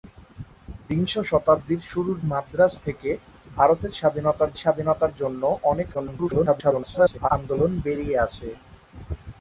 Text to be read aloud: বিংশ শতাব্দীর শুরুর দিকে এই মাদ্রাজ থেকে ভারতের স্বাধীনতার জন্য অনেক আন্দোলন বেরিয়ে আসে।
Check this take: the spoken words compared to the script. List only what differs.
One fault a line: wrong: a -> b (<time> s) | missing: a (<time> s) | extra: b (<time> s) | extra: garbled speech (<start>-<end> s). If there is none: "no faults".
missing: দিকে এই (2.2 s)
extra: স্বাধীনতার (4.5 s)
extra: garbled speech (5.9-7.3 s)